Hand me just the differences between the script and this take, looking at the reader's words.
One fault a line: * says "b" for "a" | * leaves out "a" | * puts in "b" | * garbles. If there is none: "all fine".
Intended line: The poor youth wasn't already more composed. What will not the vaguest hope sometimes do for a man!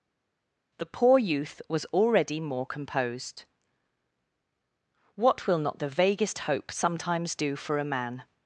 * says "was" for "wasn't"